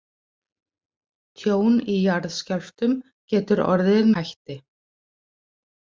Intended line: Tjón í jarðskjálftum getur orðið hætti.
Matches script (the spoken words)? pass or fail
pass